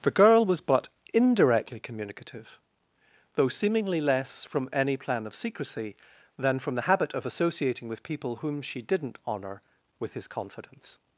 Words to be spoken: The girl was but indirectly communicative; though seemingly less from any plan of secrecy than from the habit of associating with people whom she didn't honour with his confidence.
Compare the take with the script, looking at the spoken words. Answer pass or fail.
pass